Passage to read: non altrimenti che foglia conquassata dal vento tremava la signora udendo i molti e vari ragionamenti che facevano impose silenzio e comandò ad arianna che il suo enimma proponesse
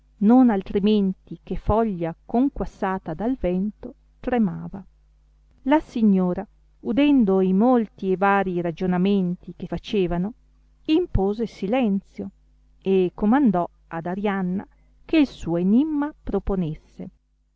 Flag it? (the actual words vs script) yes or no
no